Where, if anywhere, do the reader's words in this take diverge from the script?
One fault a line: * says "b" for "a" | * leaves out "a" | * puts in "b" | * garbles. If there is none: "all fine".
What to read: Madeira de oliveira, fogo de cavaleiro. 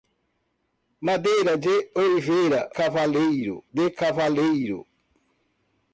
* says "cavaleiro" for "fogo"